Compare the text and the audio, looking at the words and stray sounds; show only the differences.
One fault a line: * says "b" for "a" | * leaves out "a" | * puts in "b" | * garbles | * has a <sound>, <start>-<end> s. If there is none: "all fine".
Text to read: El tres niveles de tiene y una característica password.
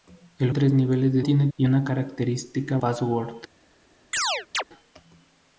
* has a chirp, 4.1-4.6 s